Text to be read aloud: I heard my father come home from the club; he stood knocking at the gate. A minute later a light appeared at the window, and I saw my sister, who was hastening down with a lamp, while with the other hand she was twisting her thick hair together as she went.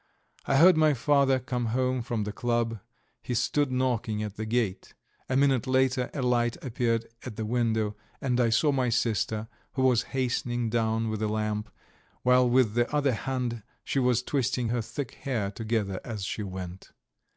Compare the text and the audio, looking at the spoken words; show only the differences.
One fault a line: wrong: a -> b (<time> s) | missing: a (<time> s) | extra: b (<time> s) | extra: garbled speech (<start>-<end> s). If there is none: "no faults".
no faults